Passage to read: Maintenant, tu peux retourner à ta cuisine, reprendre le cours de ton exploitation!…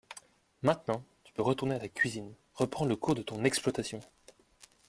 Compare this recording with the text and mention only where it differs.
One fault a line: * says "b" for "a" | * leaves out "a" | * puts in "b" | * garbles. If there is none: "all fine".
all fine